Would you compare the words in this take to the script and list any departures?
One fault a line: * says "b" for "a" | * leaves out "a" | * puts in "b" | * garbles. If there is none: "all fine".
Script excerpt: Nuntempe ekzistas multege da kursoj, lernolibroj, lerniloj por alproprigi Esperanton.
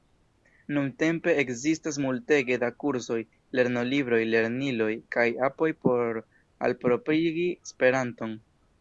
* puts in "kaj apoj"